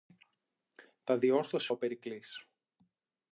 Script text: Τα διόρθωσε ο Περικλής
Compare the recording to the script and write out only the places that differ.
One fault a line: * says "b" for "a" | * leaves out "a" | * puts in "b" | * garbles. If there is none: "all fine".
all fine